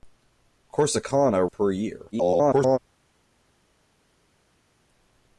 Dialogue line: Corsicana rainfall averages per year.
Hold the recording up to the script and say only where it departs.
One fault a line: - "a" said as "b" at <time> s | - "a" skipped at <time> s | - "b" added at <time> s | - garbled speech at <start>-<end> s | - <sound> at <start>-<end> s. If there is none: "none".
- "rainfall averages" skipped at 1.5 s
- garbled speech at 2.1-2.8 s